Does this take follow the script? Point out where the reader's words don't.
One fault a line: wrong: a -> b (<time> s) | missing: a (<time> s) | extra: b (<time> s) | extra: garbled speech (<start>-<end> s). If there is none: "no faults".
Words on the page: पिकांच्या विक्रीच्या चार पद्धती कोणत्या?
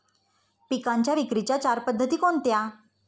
no faults